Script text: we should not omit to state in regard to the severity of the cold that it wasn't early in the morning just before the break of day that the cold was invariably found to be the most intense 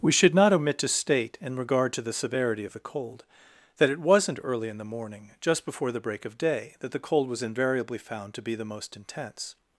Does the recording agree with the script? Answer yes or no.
yes